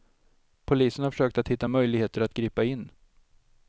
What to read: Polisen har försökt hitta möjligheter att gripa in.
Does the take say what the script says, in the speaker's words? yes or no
no